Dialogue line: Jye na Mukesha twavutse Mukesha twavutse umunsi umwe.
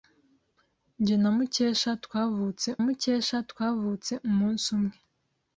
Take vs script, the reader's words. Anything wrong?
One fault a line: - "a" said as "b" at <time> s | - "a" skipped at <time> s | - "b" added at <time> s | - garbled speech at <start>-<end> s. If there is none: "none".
none